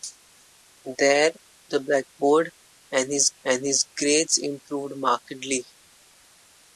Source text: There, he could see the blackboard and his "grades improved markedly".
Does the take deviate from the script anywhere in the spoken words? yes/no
yes